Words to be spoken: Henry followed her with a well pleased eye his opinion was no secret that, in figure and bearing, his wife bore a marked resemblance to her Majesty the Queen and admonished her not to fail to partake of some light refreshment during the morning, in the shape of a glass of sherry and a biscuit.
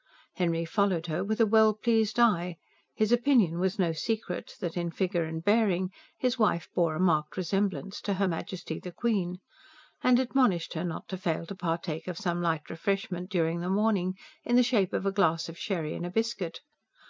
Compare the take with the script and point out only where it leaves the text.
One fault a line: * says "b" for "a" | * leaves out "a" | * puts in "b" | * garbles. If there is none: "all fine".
all fine